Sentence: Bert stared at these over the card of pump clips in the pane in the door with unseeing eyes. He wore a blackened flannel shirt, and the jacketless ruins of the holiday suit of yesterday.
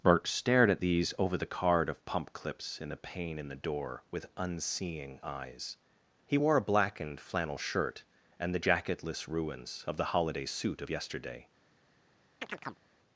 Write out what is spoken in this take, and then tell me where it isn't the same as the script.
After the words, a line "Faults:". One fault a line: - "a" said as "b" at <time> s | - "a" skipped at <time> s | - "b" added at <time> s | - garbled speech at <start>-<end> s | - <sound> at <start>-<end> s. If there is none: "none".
Bert stared at these over the card of pump clips in the pane in the door with unseeing eyes. He wore a blackened flannel shirt, and the jacketless ruins of the holiday suit of yesterday.
Faults:
- chirp at 12.4-12.8 s